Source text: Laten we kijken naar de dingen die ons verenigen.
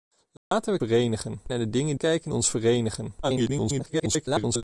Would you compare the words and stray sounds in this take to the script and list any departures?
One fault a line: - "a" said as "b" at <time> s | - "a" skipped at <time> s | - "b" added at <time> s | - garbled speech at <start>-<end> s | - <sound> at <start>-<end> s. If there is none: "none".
- dropout at 0.4-0.5 s
- "kijken" said as "verenigen" at 0.8 s
- "die" said as "kijken" at 1.9 s
- garbled speech at 3.2-4.6 s